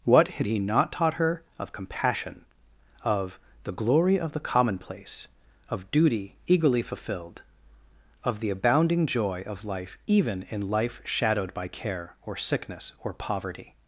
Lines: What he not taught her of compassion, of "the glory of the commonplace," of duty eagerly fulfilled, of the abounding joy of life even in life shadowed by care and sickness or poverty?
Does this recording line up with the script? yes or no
no